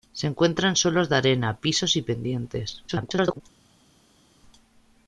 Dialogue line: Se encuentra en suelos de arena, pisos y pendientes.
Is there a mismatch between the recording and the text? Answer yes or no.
yes